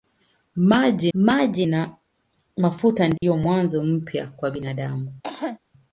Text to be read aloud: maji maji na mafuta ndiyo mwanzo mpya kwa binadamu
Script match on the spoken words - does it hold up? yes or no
yes